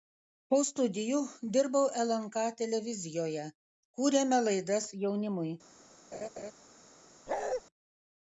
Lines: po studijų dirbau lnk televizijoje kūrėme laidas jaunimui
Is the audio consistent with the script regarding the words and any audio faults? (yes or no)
no